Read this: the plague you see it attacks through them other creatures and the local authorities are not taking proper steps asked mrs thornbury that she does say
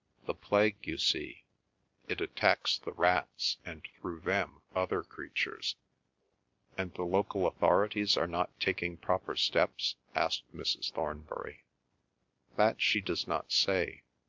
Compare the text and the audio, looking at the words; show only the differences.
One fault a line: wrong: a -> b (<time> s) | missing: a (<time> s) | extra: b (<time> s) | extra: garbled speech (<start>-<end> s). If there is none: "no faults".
extra: the rats and (2.8 s)
extra: not (13.3 s)